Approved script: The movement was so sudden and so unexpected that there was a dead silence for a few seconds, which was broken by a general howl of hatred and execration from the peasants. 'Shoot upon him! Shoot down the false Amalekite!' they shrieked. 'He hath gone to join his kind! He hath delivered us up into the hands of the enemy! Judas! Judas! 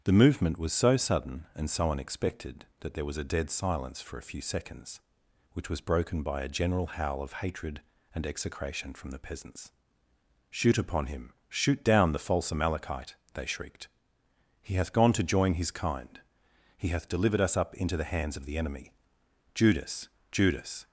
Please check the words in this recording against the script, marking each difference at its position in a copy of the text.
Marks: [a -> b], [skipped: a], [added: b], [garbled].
The movement was so sudden and so unexpected that there was a dead silence for a few seconds, which was broken by a general howl of hatred and execration from the peasants. 'Shoot upon him! Shoot down the false Amalekite!' they shrieked. 'He hath gone to join his kind! He hath delivered us up into the hands of the enemy! Judas! Judas!